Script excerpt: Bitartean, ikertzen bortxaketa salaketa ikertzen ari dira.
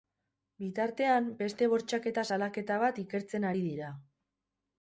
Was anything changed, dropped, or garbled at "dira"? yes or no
no